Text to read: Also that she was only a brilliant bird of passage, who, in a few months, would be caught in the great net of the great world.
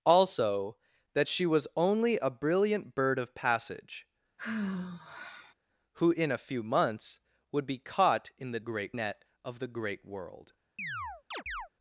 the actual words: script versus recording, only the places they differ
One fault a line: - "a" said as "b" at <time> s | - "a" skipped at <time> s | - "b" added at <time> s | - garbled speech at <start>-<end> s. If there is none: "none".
none